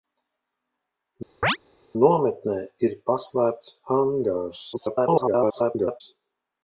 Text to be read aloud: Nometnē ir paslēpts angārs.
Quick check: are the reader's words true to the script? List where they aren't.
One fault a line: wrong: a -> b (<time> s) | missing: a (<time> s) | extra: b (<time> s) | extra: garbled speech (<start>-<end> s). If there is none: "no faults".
extra: garbled speech (4.7-6.0 s)